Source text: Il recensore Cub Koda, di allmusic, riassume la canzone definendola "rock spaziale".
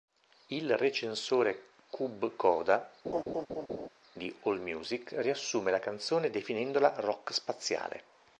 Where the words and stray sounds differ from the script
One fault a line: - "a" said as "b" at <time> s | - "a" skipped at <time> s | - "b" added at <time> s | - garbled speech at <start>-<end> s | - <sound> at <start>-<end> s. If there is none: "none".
- laugh at 3.0-3.9 s